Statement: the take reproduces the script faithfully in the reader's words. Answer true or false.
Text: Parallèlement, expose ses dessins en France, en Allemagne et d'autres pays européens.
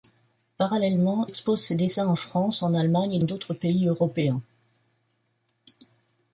true